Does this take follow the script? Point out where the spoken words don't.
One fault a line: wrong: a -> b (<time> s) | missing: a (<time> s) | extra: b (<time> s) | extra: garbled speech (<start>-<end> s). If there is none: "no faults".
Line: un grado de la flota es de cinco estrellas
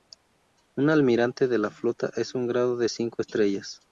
wrong: grado -> almirante (0.9 s)
extra: un grado (2.3 s)